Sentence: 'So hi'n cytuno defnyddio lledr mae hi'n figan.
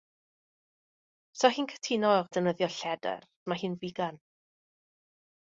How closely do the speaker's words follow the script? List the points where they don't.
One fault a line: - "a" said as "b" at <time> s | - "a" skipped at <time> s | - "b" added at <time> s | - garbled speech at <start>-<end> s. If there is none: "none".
none